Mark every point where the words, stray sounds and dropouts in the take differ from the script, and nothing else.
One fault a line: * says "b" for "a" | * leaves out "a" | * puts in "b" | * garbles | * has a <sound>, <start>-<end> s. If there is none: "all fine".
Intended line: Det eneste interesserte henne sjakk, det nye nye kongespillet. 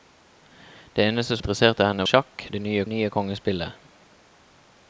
all fine